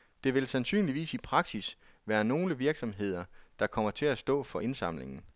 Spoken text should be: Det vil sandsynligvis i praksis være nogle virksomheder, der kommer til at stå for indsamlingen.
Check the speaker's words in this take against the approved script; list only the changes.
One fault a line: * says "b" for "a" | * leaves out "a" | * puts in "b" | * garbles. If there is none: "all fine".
all fine